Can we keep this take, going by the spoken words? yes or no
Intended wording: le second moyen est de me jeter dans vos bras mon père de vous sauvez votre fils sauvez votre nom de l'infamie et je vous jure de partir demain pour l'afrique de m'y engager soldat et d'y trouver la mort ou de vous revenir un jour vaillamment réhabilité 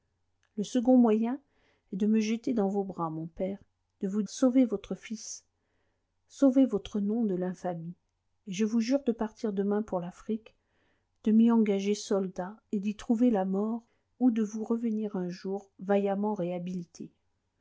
yes